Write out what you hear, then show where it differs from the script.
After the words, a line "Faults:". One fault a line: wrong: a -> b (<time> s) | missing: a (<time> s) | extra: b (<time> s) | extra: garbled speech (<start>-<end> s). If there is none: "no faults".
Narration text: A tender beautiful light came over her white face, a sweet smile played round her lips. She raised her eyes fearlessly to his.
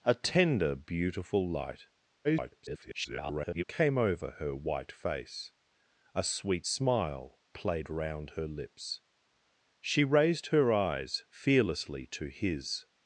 A tender beautiful light [garbled] came over her white face, a sweet smile played round her lips. She raised her eyes fearlessly to his.
Faults:
extra: garbled speech (2.2-3.6 s)